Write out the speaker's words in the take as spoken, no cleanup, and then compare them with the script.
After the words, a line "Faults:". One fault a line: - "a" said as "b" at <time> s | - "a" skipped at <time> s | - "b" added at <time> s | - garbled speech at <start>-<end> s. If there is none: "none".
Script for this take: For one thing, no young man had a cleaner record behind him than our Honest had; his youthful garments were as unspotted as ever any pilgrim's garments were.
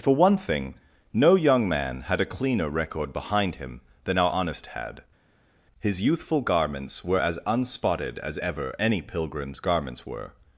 For one thing, no young man had a cleaner record behind him than our Honest had; his youthful garments were as unspotted as ever any pilgrim's garments were.
Faults:
none